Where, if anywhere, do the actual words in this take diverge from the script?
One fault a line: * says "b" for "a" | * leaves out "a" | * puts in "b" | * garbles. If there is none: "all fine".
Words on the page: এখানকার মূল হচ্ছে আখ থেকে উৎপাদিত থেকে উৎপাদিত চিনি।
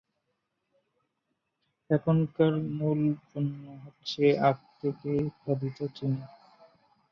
* puts in "পণ্য"
* leaves out "থেকে উৎপাদিত"